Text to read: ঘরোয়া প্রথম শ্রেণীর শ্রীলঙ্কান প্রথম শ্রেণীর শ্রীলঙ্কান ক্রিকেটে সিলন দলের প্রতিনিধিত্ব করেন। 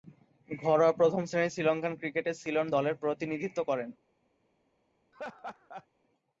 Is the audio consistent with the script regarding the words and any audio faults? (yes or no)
no